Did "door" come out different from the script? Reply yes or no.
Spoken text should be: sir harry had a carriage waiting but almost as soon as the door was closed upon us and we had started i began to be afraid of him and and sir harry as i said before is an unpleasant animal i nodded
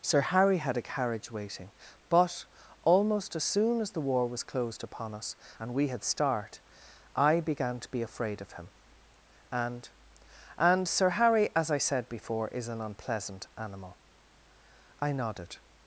yes